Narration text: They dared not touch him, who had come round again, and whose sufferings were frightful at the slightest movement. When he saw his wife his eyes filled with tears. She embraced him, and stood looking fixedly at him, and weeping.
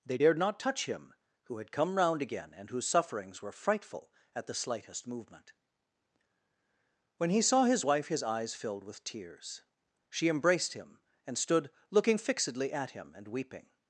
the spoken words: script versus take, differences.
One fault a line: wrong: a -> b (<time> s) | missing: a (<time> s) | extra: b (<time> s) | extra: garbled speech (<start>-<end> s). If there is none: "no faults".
no faults